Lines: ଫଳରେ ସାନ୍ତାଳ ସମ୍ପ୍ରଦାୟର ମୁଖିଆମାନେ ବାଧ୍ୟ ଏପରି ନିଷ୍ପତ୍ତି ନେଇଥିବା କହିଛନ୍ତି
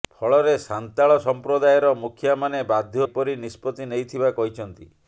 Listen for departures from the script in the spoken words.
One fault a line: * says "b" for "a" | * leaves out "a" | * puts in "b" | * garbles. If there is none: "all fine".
all fine